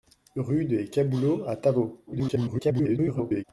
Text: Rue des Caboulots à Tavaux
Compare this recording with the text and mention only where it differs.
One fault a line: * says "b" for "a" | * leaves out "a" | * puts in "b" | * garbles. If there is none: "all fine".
* garbles